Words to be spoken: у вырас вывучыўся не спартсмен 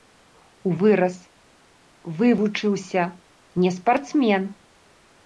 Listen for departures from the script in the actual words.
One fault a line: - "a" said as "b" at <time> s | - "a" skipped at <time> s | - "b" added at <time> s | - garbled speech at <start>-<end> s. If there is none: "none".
none